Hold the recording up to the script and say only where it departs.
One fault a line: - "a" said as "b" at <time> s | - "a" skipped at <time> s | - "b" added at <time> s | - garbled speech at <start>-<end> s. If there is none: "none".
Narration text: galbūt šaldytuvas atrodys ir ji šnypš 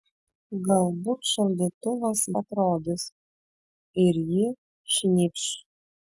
none